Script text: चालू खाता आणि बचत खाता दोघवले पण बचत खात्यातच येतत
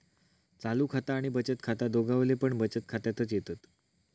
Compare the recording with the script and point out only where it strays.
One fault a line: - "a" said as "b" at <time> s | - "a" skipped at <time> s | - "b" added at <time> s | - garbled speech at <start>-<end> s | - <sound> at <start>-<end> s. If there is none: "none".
none